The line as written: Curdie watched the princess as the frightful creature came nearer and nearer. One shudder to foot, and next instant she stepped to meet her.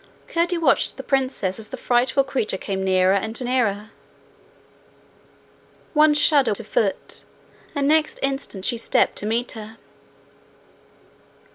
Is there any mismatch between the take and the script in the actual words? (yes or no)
no